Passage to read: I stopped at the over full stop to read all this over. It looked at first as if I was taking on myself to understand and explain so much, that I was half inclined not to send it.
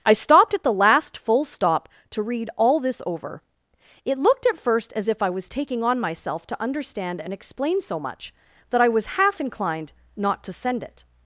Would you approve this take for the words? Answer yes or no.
no